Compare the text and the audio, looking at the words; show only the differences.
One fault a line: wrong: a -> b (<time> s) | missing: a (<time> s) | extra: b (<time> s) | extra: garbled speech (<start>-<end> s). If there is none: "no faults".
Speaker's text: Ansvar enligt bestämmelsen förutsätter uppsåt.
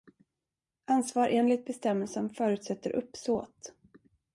no faults